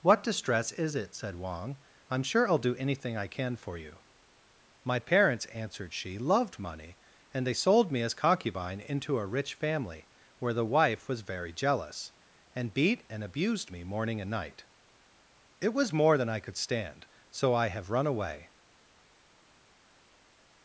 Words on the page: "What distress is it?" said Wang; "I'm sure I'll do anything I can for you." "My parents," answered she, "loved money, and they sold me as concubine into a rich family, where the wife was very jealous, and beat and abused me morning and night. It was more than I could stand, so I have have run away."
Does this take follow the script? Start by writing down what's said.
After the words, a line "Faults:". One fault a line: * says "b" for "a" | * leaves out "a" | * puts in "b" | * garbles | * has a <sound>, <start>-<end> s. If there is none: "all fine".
"What distress is it?" said Wang; "I'm sure I'll do anything I can for you." "My parents," answered she, "loved money, and they sold me as concubine into a rich family, where the wife was very jealous, and beat and abused me morning and night. It was more than I could stand, so I have run away."
Faults:
* leaves out "have"